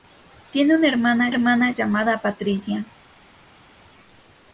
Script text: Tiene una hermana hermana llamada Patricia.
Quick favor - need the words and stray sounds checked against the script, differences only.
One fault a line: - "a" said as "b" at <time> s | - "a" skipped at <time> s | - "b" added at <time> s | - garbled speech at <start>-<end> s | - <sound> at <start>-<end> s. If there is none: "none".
none